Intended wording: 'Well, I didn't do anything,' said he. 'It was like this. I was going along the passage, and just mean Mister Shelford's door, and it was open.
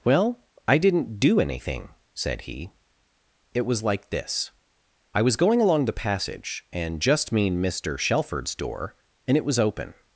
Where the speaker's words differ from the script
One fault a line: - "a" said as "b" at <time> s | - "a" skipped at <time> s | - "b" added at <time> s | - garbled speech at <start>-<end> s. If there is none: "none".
none